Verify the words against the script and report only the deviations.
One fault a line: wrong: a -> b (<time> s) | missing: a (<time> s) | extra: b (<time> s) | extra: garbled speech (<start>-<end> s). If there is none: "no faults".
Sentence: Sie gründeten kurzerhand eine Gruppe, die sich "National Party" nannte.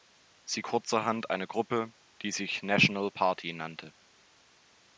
missing: gründeten (0.6 s)